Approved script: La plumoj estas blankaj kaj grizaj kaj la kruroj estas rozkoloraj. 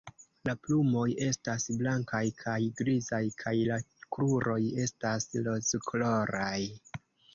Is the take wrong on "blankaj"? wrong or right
right